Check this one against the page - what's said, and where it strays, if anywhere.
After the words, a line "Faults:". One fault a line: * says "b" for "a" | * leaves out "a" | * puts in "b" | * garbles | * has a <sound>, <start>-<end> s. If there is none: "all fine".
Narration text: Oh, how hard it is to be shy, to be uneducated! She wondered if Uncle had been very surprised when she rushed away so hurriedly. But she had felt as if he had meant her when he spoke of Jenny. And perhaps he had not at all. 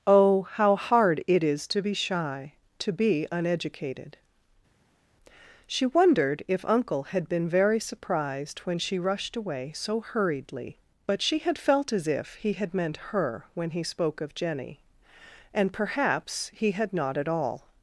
Oh, how hard it is to be shy, to be uneducated! She wondered if Uncle had been very surprised when she rushed away so hurriedly. But she had felt as if he had meant her when he spoke of Jenny. And perhaps he had not at all.
Faults:
all fine